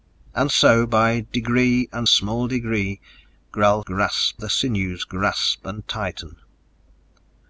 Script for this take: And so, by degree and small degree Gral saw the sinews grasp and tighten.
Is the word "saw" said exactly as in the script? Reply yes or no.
no